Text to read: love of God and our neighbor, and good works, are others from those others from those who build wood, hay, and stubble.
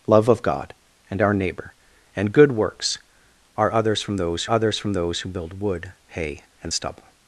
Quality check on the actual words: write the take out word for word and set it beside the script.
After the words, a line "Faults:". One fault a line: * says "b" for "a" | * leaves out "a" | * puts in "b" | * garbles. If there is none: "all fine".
love of God and our neighbor, and good works, are others from those others from those who build wood, hay, and stubble.
Faults:
all fine